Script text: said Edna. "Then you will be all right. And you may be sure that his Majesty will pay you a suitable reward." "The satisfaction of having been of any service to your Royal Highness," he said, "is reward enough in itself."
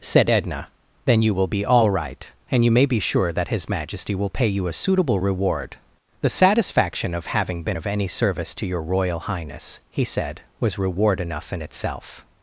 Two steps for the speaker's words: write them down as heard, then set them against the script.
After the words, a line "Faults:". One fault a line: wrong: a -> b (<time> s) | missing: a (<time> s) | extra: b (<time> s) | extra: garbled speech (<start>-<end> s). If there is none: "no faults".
said Edna. "Then you will be all right. And you may be sure that his Majesty will pay you a suitable reward." "The satisfaction of having been of any service to your Royal Highness," he said, "was reward enough in itself."
Faults:
wrong: is -> was (10.6 s)